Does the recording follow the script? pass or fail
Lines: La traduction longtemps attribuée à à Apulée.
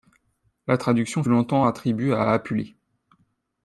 pass